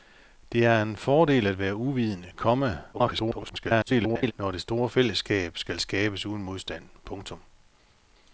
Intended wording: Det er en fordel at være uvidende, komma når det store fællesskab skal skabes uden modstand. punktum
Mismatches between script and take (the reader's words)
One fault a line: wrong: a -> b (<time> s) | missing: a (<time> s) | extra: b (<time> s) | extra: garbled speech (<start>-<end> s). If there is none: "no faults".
extra: garbled speech (2.9-4.3 s)